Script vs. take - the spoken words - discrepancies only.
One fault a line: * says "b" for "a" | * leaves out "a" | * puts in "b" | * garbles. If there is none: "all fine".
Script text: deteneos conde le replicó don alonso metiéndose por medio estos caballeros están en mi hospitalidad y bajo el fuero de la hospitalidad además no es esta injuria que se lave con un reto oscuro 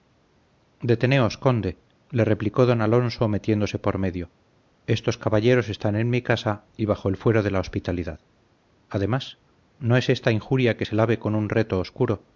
* says "casa" for "hospitalidad"